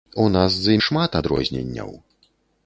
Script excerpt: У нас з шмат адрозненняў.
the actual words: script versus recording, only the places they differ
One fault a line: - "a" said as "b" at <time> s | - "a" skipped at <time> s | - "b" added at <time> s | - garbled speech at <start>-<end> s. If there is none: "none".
none